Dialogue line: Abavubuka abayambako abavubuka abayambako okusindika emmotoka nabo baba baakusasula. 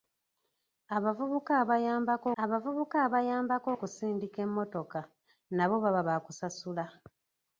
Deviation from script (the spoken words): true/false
false